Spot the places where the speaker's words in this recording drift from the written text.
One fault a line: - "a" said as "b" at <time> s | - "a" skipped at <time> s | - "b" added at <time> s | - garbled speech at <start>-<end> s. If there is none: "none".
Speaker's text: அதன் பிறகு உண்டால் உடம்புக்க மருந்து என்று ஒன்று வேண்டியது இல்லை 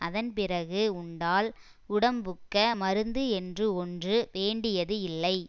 none